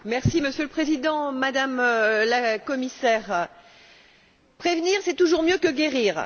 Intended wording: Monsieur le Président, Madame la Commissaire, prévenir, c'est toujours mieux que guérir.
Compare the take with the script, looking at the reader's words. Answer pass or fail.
pass